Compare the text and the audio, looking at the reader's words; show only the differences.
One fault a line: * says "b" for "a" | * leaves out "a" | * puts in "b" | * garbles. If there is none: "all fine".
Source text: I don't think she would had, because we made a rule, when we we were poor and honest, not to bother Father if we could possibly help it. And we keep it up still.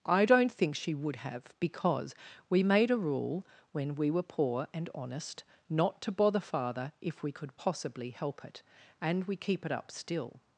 * says "have" for "had"
* leaves out "we"